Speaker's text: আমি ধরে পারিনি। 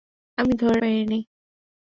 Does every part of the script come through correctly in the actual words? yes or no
yes